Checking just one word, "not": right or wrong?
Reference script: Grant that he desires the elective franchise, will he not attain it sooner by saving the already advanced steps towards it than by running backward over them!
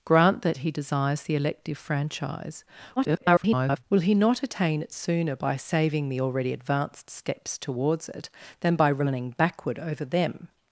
right